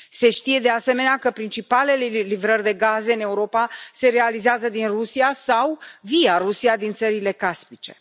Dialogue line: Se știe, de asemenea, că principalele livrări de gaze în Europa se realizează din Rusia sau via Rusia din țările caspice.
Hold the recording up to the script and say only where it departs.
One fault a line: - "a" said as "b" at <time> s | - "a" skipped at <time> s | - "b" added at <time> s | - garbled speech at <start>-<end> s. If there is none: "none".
none